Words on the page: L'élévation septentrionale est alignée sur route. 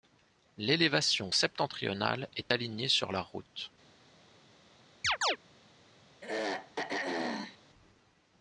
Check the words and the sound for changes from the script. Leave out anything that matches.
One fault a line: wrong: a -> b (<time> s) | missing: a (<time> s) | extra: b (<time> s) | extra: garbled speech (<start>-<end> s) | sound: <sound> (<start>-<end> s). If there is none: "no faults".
extra: la (3.1 s)
sound: chirp (5.0-5.4 s)
sound: throat clearing (6.2-7.6 s)